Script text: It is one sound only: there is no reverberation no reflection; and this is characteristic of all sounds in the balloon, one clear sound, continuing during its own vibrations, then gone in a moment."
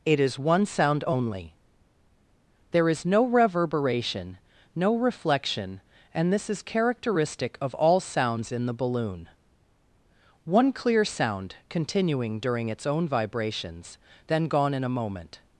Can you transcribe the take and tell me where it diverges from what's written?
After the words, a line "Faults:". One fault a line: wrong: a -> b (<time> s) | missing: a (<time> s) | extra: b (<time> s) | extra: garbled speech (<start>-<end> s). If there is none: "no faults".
It is one sound only: there is no reverberation no reflection; and this is characteristic of all sounds in the balloon, one clear sound, continuing during its own vibrations, then gone in a moment."
Faults:
no faults